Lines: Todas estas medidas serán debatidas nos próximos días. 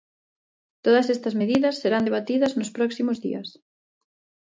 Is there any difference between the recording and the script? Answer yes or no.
no